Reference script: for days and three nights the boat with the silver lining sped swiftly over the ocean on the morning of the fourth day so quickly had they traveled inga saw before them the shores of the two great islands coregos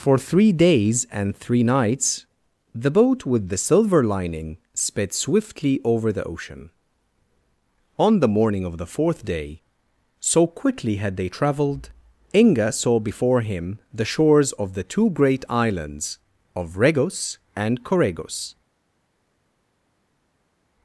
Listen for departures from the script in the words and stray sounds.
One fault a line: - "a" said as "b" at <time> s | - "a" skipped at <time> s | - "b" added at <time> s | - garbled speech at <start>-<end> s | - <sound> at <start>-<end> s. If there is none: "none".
- "three" added at 0.2 s
- "them" said as "him" at 13.4 s
- "of regos and" added at 16.6 s